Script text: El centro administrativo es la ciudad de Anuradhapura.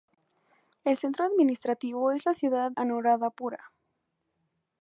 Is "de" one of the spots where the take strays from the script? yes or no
yes